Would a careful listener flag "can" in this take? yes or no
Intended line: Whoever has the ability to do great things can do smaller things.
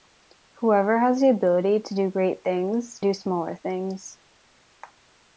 yes